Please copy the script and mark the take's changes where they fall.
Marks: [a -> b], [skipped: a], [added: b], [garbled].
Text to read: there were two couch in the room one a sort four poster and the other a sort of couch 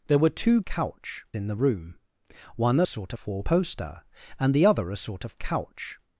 there were two couch in the room one a sort four poster and the other a sort of couch